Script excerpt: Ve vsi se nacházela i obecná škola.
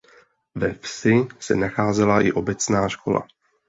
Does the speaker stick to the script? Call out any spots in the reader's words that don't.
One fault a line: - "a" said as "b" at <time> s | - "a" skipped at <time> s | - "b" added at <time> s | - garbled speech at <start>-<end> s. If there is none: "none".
none